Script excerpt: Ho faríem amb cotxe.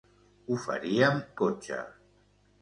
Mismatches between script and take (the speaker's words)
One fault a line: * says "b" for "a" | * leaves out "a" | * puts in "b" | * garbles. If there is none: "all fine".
* leaves out "amb"